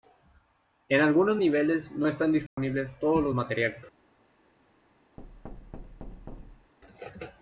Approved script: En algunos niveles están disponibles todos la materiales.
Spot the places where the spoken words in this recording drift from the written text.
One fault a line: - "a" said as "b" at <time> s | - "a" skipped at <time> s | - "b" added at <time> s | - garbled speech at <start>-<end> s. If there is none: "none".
- "no" added at 1.9 s
- "la" said as "los" at 3.2 s